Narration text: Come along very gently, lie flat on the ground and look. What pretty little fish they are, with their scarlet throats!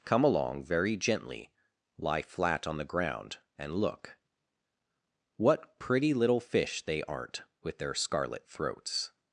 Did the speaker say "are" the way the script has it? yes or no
no